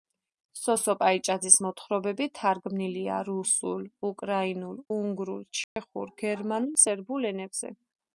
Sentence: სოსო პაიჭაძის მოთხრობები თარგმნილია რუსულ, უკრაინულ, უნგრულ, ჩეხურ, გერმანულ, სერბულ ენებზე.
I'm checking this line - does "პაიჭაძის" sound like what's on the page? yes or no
yes